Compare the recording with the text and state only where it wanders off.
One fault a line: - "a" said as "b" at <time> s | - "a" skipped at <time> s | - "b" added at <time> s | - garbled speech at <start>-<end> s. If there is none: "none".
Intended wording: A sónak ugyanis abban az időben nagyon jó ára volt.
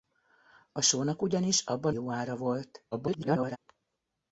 - "az időben nagyon" skipped at 1.9 s
- garbled speech at 2.9-3.6 s